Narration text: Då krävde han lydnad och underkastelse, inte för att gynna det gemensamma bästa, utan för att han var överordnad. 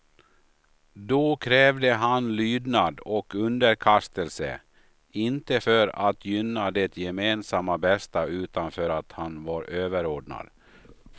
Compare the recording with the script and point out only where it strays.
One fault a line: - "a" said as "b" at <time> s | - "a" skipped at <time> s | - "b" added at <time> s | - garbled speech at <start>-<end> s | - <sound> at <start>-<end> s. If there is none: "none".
none